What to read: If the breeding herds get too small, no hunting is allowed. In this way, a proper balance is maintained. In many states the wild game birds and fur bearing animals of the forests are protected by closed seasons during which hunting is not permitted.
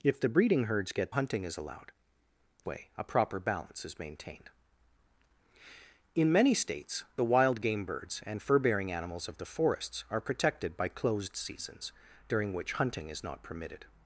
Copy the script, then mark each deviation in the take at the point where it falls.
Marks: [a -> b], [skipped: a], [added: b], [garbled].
If the breeding herds get [skipped: too small, no] hunting is allowed. [skipped: In this] way, a proper balance is maintained. In many states the wild game birds and fur bearing animals of the forests are protected by closed seasons during which hunting is not permitted.